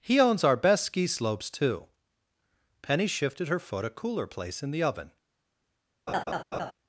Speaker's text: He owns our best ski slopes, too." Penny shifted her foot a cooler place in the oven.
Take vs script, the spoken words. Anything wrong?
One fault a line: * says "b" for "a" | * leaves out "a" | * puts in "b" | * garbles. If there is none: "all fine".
all fine